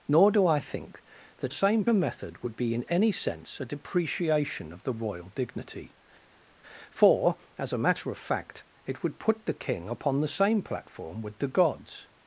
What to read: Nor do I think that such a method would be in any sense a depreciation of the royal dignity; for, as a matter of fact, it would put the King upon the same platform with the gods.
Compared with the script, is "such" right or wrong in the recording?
wrong